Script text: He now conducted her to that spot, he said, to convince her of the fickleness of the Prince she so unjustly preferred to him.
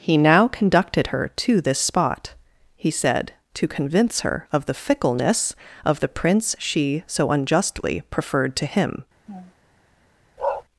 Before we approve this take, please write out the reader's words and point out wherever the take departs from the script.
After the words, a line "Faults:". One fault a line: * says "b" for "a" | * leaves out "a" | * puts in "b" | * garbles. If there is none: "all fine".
He now conducted her to this spot, he said, to convince her of the fickleness of the Prince she so unjustly preferred to him.
Faults:
* says "this" for "that"